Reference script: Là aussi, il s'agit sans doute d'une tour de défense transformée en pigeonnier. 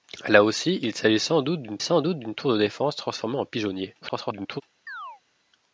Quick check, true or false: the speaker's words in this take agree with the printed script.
false